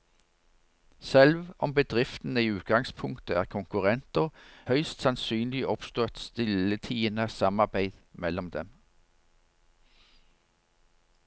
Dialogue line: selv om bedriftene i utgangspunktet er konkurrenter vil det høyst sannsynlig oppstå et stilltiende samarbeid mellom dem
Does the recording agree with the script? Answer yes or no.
no